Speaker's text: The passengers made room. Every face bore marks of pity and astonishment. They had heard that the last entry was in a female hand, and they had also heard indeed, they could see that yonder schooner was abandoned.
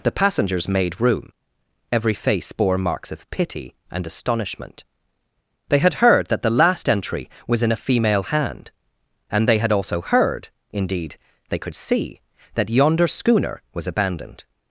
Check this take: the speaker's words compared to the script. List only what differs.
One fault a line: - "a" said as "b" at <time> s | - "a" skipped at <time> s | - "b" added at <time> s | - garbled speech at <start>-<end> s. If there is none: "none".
none